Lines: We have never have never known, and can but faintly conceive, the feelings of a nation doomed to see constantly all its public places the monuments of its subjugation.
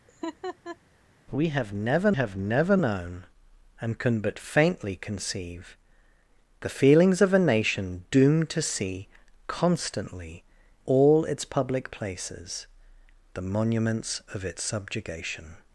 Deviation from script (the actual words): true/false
false